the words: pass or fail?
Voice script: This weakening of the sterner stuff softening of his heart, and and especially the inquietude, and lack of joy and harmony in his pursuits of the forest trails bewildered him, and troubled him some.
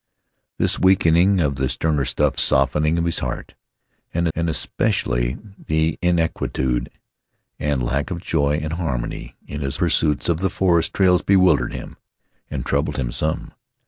pass